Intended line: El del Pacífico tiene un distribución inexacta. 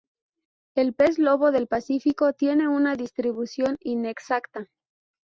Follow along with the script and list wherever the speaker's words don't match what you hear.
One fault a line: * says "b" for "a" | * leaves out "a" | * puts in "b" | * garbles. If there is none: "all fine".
* puts in "pez lobo"
* says "una" for "un"